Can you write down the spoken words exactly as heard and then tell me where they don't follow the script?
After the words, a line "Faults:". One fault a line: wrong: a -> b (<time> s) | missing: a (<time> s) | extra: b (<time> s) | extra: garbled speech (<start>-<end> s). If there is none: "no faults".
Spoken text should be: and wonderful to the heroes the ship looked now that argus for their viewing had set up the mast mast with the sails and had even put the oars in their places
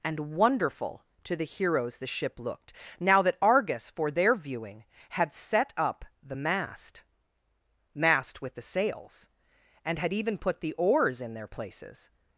and wonderful to the heroes the ship looked now that argus for their viewing had set up the mast mast with the sails and had even put the oars in their places
Faults:
no faults